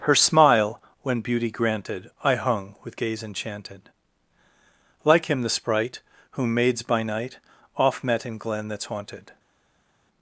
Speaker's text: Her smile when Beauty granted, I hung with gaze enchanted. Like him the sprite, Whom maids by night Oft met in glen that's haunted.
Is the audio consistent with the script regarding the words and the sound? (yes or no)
yes